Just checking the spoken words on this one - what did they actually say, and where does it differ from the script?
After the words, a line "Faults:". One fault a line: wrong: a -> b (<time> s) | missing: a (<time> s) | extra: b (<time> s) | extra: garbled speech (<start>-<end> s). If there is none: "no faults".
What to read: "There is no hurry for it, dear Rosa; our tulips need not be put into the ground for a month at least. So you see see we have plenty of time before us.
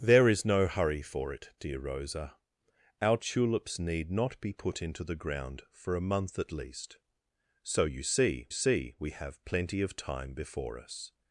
"There is no hurry for it, dear Rosa; our tulips need not be put into the ground for a month at least. So you see see we have plenty of time before us.
Faults:
no faults